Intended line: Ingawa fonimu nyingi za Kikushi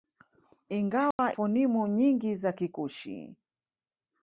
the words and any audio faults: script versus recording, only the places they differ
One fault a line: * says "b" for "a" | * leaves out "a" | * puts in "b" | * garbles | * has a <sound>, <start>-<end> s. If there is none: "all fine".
* has a dropout, 1.1-1.2 s